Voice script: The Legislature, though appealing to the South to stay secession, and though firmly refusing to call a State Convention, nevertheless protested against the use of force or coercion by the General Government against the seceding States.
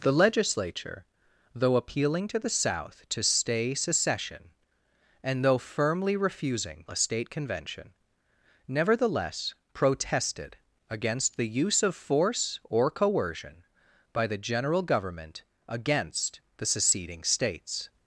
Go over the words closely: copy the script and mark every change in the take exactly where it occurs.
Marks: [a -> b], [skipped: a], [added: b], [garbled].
The Legislature, though appealing to the South to stay secession, and though firmly refusing [skipped: to call] a State Convention, nevertheless protested against the use of force or coercion by the General Government against the seceding States.